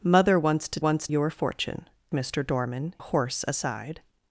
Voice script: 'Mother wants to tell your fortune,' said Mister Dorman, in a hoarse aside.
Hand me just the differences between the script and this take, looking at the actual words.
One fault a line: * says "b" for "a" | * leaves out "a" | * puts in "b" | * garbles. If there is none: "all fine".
* says "wants" for "tell"
* leaves out "said"
* leaves out "in"